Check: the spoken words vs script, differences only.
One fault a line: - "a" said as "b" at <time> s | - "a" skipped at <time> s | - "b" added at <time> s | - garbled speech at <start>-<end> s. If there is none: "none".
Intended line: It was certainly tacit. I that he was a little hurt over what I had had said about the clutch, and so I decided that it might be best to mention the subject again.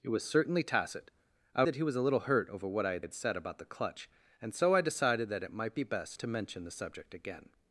none